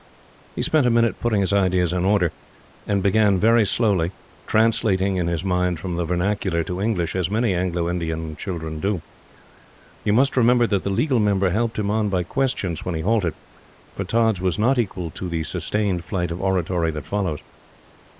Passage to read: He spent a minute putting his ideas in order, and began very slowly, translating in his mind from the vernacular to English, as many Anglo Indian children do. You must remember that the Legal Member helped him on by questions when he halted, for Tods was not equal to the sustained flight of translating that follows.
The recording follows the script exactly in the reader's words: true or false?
false